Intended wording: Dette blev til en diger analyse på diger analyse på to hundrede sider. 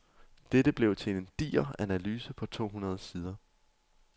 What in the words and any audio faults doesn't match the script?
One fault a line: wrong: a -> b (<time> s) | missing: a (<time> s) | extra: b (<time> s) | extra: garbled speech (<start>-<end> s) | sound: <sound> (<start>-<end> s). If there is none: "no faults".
missing: diger analyse på (2.5 s)